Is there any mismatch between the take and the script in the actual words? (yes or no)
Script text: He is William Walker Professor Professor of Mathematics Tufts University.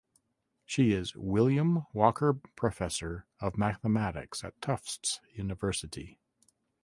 yes